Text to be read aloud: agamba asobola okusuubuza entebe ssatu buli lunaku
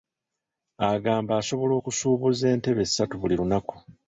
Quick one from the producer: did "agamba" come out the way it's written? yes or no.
yes